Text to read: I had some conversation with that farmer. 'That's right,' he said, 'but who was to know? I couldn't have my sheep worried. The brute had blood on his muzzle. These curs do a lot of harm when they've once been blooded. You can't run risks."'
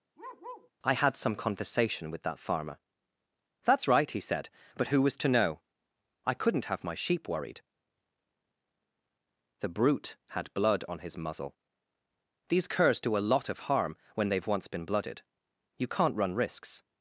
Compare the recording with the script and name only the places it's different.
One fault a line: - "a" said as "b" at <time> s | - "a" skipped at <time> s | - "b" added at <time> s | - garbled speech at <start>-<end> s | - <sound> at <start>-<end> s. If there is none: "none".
- bark at 0.2-0.7 s